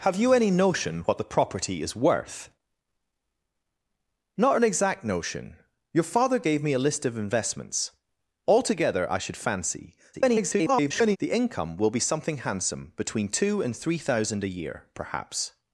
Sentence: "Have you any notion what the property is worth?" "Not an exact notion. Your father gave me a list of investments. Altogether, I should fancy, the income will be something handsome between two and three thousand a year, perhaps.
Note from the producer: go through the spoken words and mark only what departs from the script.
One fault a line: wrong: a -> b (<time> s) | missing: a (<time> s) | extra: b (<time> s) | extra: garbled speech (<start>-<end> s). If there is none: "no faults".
extra: garbled speech (10.1-11.2 s)